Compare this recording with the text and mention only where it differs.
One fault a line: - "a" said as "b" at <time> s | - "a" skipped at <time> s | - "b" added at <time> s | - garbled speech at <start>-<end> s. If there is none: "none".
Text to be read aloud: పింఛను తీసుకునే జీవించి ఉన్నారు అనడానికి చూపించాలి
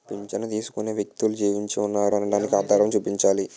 - "వ్యక్తులు" added at 0.9 s
- "ఆధారం" added at 2.6 s